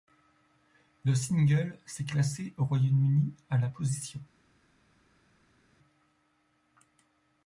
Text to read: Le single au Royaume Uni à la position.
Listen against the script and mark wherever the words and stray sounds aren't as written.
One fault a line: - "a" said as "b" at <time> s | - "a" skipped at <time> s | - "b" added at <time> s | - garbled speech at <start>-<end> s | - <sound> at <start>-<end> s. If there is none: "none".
- "s'est classé" added at 1.9 s